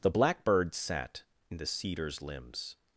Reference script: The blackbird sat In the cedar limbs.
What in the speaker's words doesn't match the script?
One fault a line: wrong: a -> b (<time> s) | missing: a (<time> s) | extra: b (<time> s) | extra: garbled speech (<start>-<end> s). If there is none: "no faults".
wrong: cedar -> cedars (1.7 s)